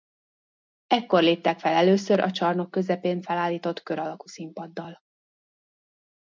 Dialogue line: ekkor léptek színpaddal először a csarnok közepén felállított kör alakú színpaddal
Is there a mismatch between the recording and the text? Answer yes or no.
yes